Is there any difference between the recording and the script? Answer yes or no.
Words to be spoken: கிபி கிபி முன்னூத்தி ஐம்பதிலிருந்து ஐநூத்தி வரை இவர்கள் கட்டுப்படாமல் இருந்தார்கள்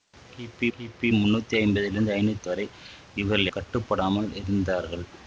no